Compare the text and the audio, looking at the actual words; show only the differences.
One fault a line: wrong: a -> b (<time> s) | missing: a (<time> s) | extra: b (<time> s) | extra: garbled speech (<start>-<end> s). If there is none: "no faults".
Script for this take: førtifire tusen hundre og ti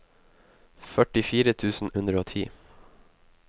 no faults